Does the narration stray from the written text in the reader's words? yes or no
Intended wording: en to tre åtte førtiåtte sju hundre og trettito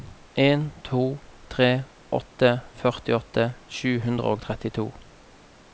no